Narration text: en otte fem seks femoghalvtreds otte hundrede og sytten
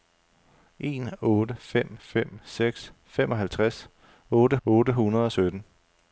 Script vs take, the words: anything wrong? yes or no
yes